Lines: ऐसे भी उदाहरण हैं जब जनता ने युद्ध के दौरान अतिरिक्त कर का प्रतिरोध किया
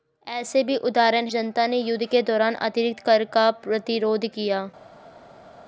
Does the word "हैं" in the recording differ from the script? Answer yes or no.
yes